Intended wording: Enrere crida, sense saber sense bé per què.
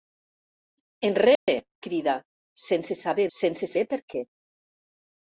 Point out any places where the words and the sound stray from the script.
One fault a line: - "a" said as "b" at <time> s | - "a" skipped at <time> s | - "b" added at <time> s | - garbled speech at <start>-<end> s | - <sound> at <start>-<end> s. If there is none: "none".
- dropout at 1.3-1.5 s